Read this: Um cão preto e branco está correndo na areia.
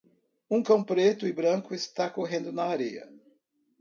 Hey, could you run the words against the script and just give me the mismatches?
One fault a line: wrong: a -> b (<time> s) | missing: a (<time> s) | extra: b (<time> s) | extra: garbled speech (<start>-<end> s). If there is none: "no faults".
no faults